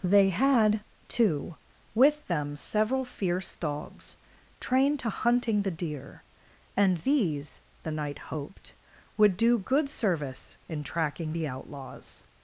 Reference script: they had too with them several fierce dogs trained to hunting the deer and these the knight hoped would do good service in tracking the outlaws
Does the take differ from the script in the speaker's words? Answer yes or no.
no